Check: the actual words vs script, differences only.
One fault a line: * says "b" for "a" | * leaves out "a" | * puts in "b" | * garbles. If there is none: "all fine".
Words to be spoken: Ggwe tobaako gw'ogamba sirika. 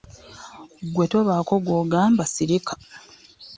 all fine